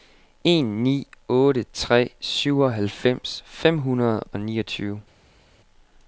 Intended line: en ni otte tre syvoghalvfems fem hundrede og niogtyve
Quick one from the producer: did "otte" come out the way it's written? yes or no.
yes